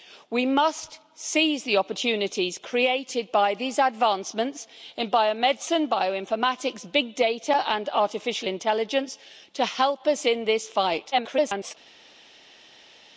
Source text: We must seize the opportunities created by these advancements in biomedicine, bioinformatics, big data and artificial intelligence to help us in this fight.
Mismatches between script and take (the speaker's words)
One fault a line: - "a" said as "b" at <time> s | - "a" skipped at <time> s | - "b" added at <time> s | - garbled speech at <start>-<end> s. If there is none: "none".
- garbled speech at 11.1-11.7 s